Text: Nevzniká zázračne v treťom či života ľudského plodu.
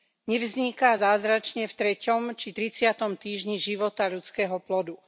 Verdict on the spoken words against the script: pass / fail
fail